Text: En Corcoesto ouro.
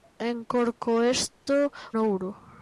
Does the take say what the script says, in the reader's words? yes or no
yes